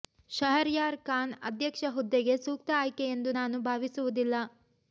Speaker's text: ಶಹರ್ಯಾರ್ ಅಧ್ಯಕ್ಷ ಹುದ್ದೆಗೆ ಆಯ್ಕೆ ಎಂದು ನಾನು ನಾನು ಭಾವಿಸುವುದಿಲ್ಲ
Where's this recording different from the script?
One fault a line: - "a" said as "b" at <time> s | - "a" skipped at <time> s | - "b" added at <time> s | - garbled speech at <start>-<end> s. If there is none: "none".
- "ಖಾನ್" added at 1.0 s
- "ಸೂಕ್ತ" added at 2.5 s
- "ನಾನು" skipped at 3.6 s